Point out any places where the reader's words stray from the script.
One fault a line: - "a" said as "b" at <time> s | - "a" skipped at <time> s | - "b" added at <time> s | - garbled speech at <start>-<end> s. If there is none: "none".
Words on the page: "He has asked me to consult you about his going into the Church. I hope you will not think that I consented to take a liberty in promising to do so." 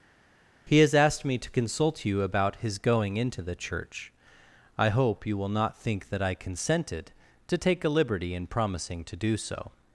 none